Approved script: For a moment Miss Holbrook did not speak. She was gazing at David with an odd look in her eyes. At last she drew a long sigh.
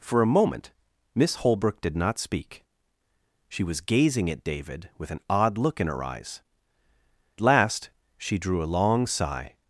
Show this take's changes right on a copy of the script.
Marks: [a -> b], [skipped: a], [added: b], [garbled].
For a moment Miss Holbrook did not speak. She was gazing at David with an odd look in her eyes. [skipped: At] last she drew a long sigh.